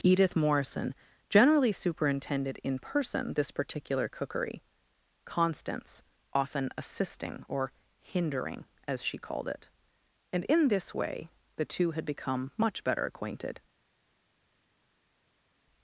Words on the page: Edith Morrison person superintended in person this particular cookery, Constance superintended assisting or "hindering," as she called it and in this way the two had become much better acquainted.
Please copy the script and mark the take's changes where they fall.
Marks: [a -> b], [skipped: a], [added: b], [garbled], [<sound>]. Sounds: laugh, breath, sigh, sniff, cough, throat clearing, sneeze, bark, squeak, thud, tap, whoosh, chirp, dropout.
Edith Morrison [person -> generally] superintended in person this particular cookery, Constance [superintended -> often] assisting or "hindering," as she called it and in this way the two had become much better acquainted.